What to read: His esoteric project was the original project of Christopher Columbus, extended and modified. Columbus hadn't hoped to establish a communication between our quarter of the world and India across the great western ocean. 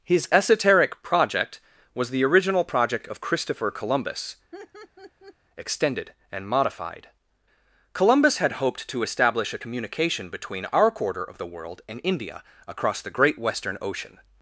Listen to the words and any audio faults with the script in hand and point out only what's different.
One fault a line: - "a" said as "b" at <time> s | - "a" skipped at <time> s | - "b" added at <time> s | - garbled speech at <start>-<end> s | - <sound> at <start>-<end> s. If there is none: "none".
- laugh at 4.5-5.4 s
- "hadn't" said as "had" at 8.4 s